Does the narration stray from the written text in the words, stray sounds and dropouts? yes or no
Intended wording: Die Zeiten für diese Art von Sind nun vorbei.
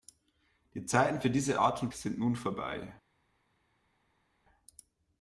no